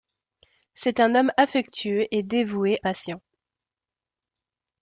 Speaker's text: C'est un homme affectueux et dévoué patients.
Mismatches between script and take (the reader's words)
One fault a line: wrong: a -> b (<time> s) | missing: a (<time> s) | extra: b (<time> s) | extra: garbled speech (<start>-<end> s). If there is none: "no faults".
no faults